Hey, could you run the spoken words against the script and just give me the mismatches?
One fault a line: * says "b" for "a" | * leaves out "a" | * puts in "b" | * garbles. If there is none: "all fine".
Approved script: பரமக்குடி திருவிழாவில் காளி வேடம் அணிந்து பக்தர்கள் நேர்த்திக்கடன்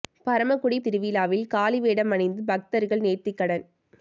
all fine